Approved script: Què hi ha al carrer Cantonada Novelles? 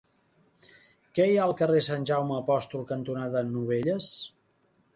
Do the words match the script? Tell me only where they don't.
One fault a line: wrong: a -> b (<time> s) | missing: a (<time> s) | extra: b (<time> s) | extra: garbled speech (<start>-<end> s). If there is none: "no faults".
extra: Sant Jaume Apòstol (1.9 s)